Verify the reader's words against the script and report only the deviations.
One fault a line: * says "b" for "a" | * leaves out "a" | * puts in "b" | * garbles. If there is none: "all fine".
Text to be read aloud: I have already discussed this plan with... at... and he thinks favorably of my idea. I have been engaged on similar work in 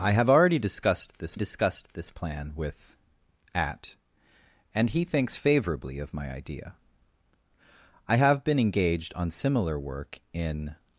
* puts in "discussed this"